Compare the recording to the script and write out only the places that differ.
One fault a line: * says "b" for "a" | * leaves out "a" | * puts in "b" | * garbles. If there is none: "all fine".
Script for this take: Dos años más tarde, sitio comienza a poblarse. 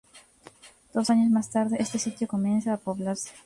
* puts in "este"